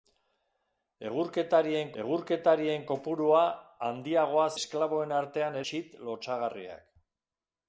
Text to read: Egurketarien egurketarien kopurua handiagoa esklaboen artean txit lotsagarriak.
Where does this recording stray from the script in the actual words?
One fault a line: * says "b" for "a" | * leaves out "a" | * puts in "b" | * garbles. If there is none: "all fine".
all fine